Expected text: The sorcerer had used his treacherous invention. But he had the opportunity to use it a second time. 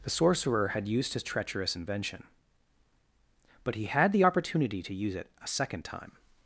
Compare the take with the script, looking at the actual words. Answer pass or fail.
pass